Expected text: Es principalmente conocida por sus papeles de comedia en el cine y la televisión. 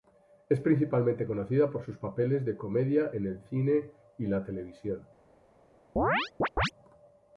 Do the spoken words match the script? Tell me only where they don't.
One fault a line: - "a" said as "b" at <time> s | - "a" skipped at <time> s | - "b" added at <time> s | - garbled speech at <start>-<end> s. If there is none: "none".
none